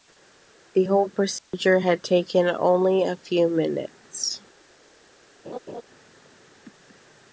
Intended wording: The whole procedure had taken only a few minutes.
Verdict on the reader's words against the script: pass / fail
pass